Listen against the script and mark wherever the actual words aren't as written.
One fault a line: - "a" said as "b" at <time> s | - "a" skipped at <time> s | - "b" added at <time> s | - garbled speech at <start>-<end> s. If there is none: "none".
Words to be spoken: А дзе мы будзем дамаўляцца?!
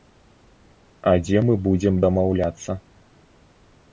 none